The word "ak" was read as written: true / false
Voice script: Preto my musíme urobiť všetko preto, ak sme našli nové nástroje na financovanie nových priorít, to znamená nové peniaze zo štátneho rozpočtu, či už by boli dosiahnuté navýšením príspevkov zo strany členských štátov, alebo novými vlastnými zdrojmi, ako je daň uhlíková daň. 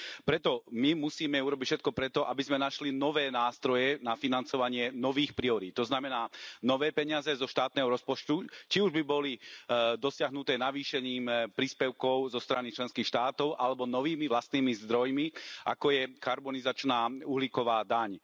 false